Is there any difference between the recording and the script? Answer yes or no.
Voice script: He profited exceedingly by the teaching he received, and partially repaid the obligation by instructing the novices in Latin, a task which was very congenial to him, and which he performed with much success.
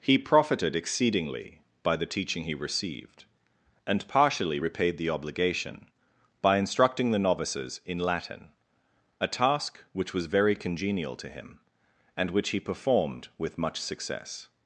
no